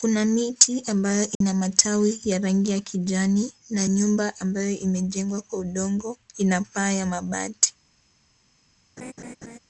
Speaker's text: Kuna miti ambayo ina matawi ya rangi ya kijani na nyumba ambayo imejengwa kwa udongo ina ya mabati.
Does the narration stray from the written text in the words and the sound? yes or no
yes